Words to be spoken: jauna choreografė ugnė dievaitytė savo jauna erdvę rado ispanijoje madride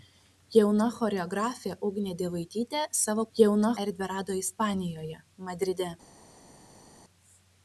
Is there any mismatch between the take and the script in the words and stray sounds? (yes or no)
no